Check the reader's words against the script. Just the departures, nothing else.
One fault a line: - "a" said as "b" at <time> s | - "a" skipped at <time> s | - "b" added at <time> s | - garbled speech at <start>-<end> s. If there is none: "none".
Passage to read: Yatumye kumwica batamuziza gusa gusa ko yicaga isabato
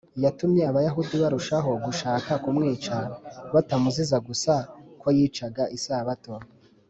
- "abayahudi barushaho gushaka" added at 0.7 s
- "gusa" skipped at 4.5 s